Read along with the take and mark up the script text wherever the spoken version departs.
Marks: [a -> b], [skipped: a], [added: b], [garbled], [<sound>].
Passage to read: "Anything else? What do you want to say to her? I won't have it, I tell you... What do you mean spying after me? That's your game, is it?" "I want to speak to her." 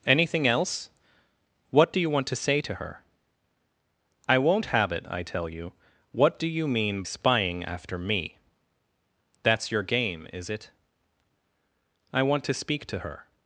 "Anything else? What do you want to say to her? I won't have it, I tell you... What do you mean spying after me? That's your game, is it?" "I want to speak to her."